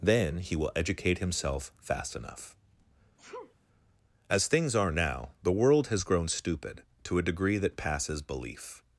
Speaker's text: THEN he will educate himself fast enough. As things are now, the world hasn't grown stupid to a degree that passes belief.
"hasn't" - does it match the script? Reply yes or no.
no